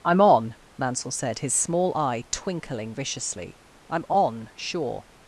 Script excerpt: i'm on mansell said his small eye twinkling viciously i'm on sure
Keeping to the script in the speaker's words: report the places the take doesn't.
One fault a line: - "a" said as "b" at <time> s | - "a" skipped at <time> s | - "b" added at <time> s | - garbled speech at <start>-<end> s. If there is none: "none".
none